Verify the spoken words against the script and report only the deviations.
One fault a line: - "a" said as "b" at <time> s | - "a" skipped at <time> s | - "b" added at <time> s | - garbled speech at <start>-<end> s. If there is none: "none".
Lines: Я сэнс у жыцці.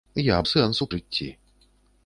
none